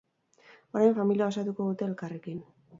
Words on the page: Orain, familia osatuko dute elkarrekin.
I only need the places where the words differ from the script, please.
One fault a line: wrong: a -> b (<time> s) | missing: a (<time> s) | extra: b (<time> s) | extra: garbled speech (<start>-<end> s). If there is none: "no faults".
no faults